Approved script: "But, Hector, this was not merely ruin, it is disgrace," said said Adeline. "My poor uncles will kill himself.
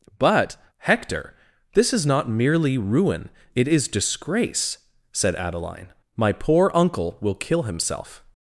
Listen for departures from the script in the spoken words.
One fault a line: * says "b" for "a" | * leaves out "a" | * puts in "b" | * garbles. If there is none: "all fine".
* says "is" for "was"
* leaves out "said"
* says "uncle" for "uncles"